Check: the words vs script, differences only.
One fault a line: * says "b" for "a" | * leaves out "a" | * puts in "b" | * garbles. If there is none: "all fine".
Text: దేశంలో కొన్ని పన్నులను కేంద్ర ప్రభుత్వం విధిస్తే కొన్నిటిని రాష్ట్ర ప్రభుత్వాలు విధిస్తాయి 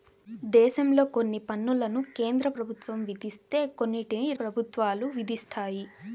* leaves out "రాష్ట్ర"